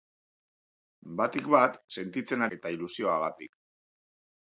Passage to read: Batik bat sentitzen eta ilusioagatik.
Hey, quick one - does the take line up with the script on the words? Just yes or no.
yes